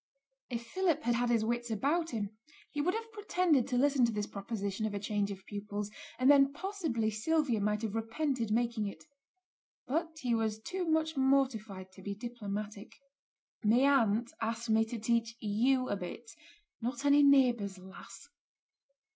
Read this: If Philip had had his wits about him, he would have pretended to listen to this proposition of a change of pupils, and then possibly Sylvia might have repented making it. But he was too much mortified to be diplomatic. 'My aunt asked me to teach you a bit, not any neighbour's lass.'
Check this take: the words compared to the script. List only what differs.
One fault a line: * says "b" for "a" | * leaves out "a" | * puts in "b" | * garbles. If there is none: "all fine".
all fine